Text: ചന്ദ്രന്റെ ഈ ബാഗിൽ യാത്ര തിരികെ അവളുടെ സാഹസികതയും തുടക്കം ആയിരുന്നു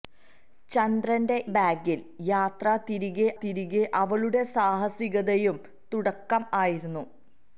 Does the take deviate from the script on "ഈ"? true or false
true